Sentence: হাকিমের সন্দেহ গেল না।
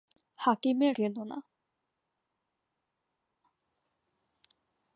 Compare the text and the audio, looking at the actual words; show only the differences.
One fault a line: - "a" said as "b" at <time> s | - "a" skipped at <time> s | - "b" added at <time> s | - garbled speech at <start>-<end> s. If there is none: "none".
- "সন্দেহ" skipped at 0.9 s